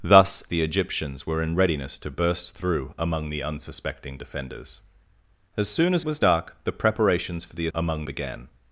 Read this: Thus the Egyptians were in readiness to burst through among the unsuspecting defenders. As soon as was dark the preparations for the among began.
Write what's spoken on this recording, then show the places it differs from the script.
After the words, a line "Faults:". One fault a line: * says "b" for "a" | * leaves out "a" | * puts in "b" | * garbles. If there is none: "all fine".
Thus the Egyptians were in readiness to burst through among the unsuspecting defenders. As soon as was dark the preparations for the among began.
Faults:
all fine